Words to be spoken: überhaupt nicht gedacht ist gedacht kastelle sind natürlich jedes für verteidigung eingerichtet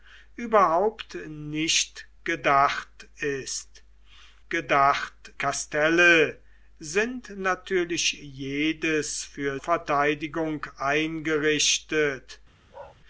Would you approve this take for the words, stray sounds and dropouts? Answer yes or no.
no